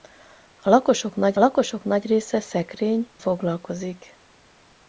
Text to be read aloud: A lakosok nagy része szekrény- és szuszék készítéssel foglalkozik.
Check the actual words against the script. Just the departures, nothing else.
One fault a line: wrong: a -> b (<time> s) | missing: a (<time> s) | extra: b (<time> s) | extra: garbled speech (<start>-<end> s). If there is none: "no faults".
extra: lakosok nagy (1.4 s)
missing: és szuszék készítéssel (3.1 s)